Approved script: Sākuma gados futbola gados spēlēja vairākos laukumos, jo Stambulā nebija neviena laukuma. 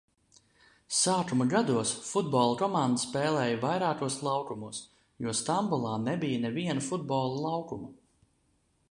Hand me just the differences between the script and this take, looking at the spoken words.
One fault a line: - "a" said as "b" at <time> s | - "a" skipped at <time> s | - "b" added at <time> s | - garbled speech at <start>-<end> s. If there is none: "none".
- "gados" said as "komanda" at 2.6 s
- "futbola" added at 6.9 s